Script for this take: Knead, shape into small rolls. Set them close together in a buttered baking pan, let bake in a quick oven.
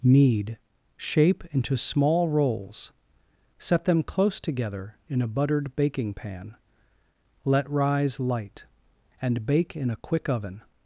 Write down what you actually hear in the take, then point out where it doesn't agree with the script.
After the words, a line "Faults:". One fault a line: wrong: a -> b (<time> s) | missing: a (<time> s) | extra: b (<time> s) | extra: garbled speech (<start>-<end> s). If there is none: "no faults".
Knead, shape into small rolls. Set them close together in a buttered baking pan, let rise light, and bake in a quick oven.
Faults:
extra: rise light and (7.7 s)